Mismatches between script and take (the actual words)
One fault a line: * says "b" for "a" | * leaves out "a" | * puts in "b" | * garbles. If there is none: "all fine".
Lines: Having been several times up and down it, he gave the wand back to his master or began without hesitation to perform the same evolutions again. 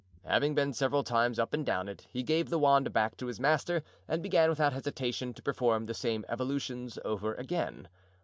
* says "and" for "or"
* puts in "over"